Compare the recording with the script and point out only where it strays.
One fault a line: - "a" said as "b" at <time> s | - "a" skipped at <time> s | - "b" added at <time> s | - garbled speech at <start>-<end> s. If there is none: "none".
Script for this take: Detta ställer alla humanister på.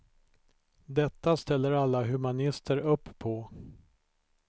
- "upp" added at 2.8 s